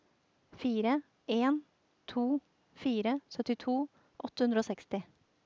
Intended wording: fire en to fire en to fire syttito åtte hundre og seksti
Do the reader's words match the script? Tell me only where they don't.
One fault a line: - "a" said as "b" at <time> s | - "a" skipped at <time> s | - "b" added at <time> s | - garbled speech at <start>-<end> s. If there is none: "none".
- "en to fire" skipped at 3.2 s